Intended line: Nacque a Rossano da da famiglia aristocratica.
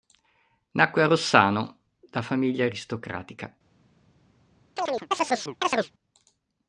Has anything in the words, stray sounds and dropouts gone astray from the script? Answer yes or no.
yes